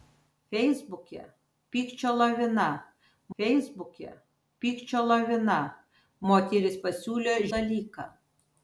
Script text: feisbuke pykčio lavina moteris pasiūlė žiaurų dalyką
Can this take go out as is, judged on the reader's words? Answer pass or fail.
fail